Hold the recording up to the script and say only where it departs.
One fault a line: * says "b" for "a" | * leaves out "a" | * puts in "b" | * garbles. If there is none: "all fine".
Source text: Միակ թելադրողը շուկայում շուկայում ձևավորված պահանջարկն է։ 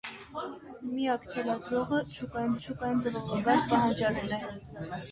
all fine